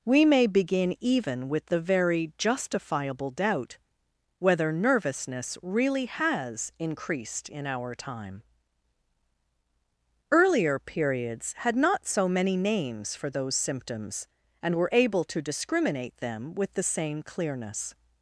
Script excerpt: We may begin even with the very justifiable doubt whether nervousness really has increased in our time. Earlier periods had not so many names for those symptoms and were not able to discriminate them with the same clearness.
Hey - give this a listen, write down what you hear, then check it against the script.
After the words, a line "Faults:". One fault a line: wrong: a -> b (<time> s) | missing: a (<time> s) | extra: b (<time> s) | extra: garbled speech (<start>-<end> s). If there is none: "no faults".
We may begin even with the very justifiable doubt whether nervousness really has increased in our time. Earlier periods had not so many names for those symptoms and were able to discriminate them with the same clearness.
Faults:
missing: not (14.9 s)